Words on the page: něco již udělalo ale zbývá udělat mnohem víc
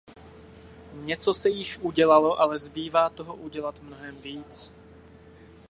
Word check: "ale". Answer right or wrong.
right